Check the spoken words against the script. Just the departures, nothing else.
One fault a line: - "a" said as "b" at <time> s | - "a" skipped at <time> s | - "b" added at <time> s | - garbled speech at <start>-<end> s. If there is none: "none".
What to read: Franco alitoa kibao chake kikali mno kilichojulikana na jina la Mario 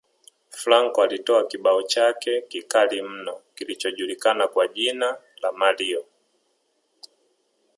- "na" said as "kwa" at 4.5 s